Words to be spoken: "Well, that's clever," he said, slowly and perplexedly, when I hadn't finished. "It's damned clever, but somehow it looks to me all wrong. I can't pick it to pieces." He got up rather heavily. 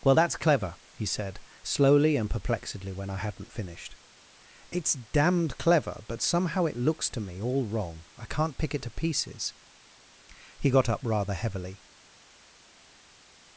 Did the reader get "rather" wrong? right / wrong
right